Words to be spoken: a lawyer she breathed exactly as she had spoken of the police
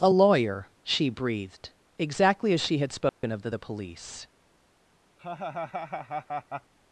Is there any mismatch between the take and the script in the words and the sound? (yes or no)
yes